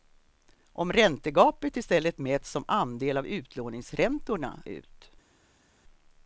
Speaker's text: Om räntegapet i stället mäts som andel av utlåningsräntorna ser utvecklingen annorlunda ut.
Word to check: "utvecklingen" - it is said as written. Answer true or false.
false